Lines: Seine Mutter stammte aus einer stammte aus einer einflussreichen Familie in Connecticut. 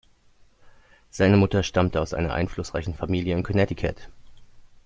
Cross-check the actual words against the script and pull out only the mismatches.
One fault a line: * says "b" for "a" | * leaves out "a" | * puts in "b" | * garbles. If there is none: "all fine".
* leaves out "stammte aus einer"